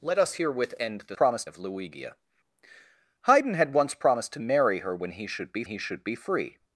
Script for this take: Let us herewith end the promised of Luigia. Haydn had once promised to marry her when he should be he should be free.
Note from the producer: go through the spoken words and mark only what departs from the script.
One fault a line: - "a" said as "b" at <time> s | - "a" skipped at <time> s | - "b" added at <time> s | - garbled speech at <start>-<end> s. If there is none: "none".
none